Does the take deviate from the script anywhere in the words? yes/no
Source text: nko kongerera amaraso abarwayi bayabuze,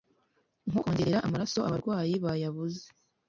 no